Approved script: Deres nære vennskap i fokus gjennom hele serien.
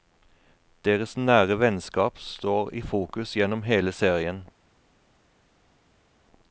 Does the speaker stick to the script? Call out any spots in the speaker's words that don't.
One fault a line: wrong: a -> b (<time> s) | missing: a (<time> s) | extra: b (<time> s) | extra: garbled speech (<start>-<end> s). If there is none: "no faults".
extra: står (2.2 s)